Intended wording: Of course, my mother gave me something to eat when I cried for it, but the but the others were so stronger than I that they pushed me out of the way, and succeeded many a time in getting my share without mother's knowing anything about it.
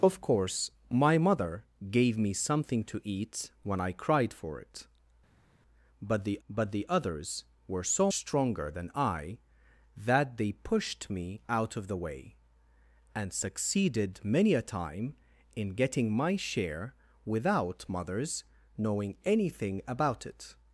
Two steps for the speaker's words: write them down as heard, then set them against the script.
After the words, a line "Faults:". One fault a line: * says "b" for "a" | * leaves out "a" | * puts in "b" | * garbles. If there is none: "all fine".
Of course, my mother gave me something to eat when I cried for it, but the but the others were so stronger than I that they pushed me out of the way, and succeeded many a time in getting my share without mother's knowing anything about it.
Faults:
all fine